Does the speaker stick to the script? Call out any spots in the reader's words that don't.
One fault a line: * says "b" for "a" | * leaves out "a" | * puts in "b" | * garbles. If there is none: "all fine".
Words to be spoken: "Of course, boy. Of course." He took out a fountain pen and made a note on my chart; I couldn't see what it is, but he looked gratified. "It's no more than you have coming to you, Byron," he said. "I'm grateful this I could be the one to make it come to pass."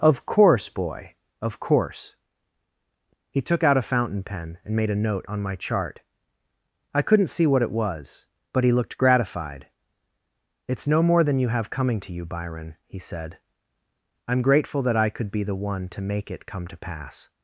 * says "was" for "is"
* says "that" for "this"